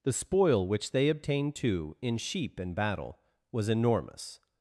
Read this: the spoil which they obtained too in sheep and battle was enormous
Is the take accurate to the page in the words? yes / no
yes